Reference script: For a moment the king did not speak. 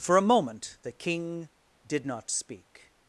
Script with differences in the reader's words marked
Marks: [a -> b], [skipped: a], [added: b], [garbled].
For a moment the king did not speak.